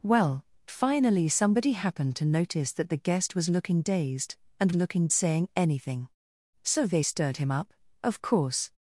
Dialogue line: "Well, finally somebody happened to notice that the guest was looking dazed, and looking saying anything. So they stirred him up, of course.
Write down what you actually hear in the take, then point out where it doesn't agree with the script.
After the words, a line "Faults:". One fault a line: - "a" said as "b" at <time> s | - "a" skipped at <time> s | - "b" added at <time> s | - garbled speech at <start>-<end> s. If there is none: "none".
"Well, finally somebody happened to notice that the guest was looking dazed, and looking saying anything. So they stirred him up, of course.
Faults:
none